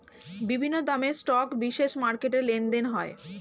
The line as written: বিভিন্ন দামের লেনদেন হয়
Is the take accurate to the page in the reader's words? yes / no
no